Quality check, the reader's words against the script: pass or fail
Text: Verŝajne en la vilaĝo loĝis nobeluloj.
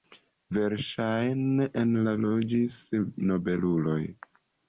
fail